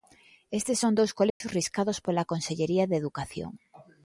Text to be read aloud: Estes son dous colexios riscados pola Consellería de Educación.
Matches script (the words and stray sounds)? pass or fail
fail